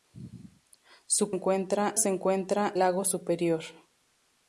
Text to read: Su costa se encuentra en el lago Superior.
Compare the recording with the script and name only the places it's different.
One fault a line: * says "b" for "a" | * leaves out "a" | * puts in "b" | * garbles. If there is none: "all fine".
* says "encuentra" for "costa"
* leaves out "en el"